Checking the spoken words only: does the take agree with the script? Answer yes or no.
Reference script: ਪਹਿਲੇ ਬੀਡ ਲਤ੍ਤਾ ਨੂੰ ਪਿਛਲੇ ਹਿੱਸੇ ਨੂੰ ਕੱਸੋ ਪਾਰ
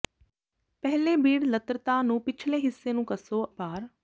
yes